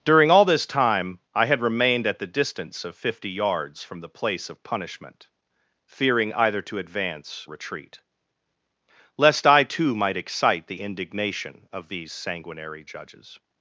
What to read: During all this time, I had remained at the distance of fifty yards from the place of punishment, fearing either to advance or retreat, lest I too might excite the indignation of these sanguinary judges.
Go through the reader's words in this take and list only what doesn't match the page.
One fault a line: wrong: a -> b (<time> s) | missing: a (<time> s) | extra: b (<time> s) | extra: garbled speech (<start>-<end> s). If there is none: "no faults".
missing: or (7.5 s)